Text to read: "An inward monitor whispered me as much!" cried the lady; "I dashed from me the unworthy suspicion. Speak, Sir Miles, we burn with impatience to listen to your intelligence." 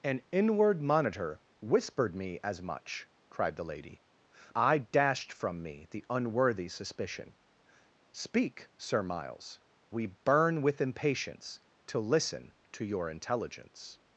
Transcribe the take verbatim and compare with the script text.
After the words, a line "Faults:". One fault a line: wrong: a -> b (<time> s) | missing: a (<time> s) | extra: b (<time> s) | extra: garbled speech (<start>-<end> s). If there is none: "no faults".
"An inward monitor whispered me as much!" cried the lady; "I dashed from me the unworthy suspicion. Speak, Sir Miles, we burn with impatience to listen to your intelligence."
Faults:
no faults